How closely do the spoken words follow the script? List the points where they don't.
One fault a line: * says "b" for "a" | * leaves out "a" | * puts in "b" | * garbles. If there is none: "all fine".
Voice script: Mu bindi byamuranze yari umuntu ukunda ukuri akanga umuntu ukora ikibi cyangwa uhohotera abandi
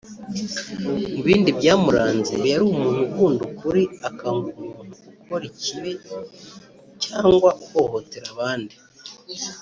all fine